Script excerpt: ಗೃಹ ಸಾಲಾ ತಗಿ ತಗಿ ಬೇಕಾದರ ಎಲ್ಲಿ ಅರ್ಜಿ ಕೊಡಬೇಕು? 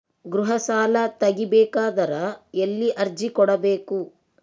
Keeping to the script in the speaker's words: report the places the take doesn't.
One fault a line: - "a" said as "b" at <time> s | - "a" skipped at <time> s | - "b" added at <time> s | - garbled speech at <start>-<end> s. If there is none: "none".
- "ತಗಿ" skipped at 1.4 s